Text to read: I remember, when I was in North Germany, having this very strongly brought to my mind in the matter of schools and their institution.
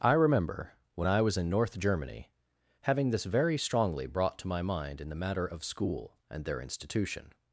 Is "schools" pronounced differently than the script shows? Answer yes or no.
yes